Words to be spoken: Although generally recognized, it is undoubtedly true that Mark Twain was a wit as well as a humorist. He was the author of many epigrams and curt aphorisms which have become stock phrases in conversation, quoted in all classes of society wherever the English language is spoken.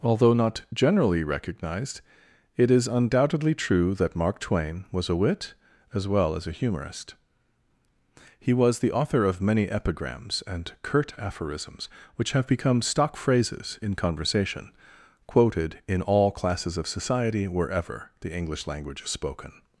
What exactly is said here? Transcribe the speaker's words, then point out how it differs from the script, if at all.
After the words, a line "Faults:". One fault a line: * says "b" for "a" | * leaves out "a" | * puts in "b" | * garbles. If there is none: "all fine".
Although not generally recognized, it is undoubtedly true that Mark Twain was a wit as well as a humorist. He was the author of many epigrams and curt aphorisms which have become stock phrases in conversation, quoted in all classes of society wherever the English language is spoken.
Faults:
* puts in "not"